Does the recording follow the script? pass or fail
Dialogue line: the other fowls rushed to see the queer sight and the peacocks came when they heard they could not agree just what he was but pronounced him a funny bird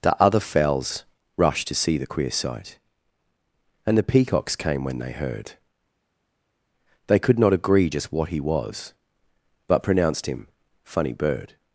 fail